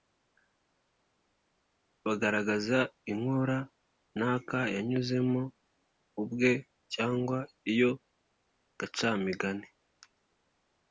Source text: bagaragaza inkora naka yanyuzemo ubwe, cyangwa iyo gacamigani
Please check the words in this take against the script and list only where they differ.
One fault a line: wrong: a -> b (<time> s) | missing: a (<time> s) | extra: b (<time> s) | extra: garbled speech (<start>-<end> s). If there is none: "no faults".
no faults